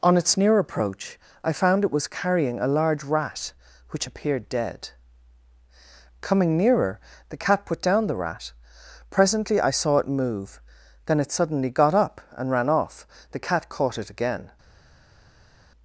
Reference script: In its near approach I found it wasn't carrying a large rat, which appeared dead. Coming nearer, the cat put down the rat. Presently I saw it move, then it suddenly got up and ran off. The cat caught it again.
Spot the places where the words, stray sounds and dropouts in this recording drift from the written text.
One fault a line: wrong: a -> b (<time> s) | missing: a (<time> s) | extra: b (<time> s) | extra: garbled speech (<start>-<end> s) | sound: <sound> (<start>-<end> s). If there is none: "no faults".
wrong: In -> On (0.0 s)
wrong: wasn't -> was (1.9 s)